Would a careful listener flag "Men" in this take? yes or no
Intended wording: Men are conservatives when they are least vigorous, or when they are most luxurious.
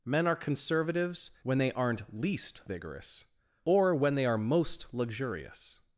no